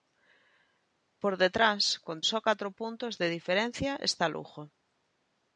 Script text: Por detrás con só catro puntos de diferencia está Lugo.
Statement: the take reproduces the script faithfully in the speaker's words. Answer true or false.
true